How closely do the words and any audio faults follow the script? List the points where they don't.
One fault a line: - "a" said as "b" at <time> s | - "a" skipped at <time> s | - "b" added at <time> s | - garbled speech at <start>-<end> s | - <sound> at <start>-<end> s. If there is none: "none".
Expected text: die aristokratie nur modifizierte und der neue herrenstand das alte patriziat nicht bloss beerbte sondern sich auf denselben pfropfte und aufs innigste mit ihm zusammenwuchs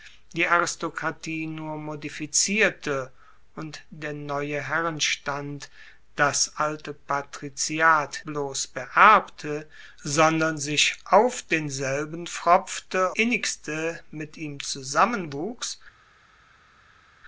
- "nicht" skipped at 8.2 s
- "und aufs" skipped at 13.1 s